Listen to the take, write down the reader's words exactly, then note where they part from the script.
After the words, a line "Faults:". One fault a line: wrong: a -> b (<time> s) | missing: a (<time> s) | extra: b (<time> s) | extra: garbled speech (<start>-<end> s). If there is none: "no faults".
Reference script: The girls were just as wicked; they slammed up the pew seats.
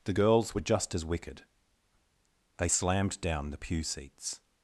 The girls were just as wicked; they slammed down the pew seats.
Faults:
wrong: up -> down (3.2 s)